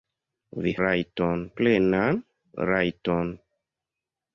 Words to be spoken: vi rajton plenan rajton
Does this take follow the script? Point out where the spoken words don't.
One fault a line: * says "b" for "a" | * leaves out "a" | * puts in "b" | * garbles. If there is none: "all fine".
all fine